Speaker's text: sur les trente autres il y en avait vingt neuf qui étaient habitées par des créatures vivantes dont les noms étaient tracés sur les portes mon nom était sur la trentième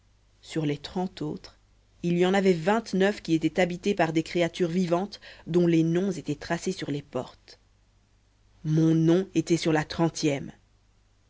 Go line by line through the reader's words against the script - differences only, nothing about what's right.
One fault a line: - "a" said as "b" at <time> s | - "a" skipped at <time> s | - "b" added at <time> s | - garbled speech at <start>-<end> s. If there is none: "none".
none